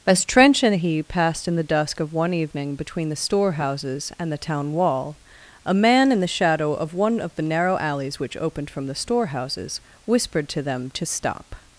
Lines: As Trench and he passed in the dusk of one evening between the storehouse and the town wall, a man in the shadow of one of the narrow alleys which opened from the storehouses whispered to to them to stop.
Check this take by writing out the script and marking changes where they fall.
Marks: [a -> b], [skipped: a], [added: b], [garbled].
As Trench and he passed in the dusk of one evening between the [storehouse -> storehouses] and the town wall, a man in the shadow of one of the narrow alleys which opened from the storehouses whispered to [skipped: to] them to stop.